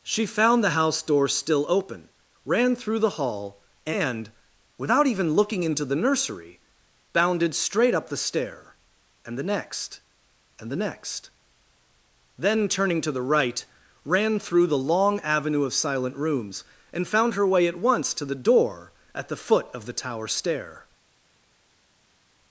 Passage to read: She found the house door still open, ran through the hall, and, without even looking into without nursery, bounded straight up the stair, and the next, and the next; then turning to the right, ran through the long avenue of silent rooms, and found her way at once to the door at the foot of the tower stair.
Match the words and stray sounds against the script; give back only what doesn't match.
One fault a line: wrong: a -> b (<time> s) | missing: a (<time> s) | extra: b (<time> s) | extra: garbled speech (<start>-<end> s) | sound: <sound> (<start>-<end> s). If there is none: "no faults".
wrong: without -> the (5.8 s)